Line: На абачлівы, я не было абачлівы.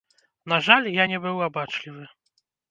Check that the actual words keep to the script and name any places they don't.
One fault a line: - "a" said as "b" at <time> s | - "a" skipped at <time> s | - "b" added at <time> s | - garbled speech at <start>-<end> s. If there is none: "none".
- "абачлівы" said as "жаль" at 0.7 s
- "было" said as "быў" at 1.3 s